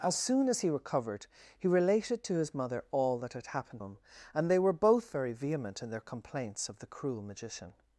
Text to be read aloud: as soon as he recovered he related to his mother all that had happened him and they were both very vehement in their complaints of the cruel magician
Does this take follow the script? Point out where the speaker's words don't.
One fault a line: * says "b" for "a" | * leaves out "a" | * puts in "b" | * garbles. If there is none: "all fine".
all fine